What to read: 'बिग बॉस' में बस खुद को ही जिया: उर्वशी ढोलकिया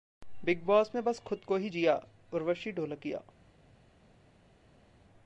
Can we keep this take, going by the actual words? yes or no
yes